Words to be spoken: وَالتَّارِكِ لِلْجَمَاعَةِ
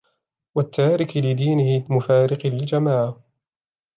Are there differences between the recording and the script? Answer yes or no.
yes